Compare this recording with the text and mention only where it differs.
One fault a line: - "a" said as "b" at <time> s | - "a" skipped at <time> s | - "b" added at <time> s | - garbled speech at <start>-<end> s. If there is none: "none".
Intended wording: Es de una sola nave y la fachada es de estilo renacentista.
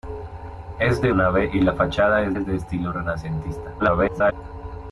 - "una sola" skipped at 1.1 s
- "es" added at 2.3 s
- garbled speech at 3.8-4.3 s